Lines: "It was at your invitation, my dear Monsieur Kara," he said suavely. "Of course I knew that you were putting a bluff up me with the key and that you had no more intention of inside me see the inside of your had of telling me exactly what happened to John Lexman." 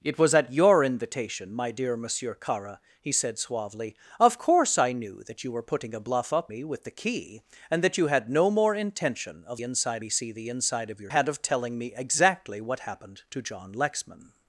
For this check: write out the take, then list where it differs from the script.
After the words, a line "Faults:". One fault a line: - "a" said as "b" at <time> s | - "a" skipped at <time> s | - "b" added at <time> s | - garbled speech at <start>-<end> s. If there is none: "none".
"It was at your invitation, my dear Monsieur Kara," he said suavely. "Of course I knew that you were putting a bluff up me with the key and that you had no more intention of inside me see the inside of your had of telling me exactly what happened to John Lexman."
Faults:
none